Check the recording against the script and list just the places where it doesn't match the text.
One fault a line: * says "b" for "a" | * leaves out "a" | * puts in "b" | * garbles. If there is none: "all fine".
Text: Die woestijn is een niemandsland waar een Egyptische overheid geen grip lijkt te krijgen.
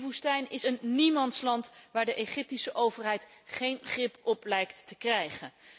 * says "de" for "een"
* puts in "op"